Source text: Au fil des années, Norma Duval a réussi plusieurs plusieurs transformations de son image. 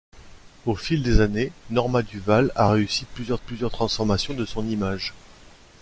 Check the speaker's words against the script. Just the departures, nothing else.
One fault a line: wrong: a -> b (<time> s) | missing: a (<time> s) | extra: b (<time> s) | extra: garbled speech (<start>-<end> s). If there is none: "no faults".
no faults